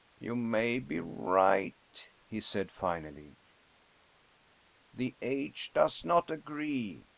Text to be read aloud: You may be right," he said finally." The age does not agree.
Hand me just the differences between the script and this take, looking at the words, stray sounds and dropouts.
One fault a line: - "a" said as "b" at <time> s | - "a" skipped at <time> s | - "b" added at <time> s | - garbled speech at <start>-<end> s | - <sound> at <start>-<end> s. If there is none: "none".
none